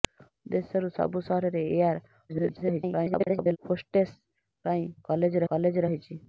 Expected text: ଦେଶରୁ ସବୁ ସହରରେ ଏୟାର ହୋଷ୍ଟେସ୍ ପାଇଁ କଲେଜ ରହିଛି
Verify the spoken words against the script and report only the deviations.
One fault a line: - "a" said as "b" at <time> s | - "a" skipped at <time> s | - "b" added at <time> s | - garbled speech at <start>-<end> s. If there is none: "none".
- garbled speech at 2.3-3.6 s
- "କଲେଜ" added at 5.5 s